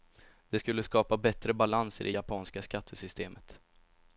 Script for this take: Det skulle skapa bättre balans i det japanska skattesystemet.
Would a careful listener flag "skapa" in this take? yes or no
no